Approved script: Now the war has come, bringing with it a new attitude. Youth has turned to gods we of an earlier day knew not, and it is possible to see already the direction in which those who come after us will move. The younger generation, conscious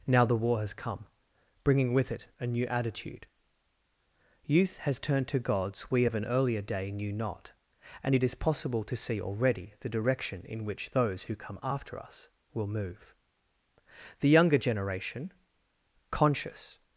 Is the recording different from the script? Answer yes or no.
no